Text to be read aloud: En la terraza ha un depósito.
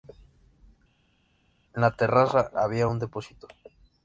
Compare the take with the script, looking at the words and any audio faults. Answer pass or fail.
fail